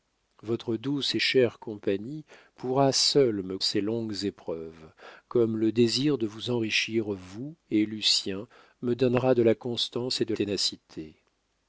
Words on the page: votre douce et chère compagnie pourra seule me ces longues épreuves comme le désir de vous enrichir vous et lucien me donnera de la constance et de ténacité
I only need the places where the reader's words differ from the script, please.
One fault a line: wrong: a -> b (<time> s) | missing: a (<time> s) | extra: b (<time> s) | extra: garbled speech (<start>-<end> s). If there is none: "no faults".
no faults